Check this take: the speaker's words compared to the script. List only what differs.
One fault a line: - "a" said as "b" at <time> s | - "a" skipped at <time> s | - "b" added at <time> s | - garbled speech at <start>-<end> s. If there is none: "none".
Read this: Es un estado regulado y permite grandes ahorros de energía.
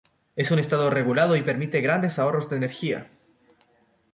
none